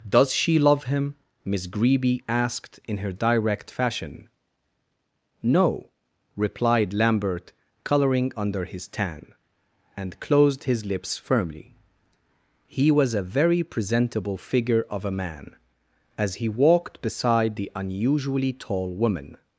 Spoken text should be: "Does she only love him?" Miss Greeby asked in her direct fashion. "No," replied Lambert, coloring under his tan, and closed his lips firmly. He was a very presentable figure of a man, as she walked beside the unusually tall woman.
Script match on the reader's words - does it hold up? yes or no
no